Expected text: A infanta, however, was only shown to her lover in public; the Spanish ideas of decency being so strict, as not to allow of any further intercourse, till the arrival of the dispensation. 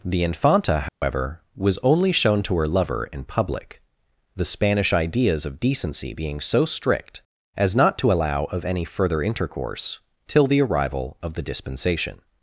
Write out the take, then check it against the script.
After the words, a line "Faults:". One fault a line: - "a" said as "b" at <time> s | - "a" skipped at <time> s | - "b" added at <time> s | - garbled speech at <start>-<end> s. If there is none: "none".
The infanta, however, was only shown to her lover in public; the Spanish ideas of decency being so strict, as not to allow of any further intercourse, till the arrival of the dispensation.
Faults:
- "A" said as "The" at 0.0 s